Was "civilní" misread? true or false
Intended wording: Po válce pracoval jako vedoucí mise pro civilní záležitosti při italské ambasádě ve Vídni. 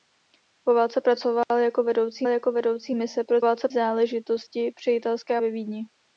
true